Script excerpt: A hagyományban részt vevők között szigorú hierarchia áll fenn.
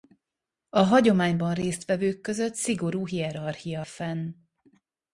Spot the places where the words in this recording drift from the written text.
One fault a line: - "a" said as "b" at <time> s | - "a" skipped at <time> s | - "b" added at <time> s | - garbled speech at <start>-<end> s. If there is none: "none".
- "áll" skipped at 3.8 s